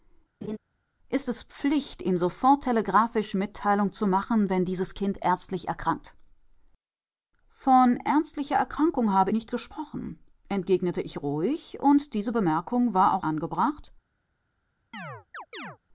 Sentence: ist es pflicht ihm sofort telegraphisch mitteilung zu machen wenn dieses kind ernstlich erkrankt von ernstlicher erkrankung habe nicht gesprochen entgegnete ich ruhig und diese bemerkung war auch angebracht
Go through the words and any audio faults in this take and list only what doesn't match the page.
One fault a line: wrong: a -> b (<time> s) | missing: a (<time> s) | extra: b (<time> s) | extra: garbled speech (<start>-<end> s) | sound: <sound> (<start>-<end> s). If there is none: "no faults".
sound: laugh (0.4-0.6 s)
sound: chirp (14.9-15.8 s)